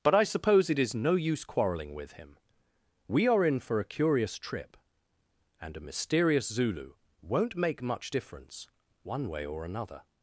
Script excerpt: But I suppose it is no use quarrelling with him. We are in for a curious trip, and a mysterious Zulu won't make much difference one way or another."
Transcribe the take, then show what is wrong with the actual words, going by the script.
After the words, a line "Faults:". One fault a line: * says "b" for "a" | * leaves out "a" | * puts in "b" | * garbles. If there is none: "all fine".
But I suppose it is no use quarrelling with him. We are in for a curious trip, and a mysterious Zulu won't make much difference one way or another."
Faults:
all fine